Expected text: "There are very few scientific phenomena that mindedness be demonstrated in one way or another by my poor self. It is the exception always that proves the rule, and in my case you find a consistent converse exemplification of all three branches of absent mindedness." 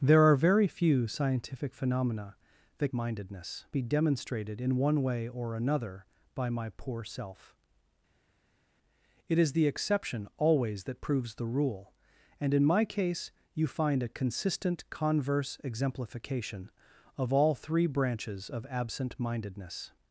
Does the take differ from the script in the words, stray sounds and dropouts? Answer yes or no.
no